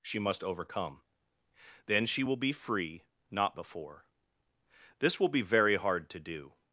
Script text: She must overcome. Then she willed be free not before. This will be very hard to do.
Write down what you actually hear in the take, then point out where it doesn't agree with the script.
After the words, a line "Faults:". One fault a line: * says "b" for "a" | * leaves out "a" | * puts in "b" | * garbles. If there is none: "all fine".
She must overcome. Then she will be free not before. This will be very hard to do.
Faults:
* says "will" for "willed"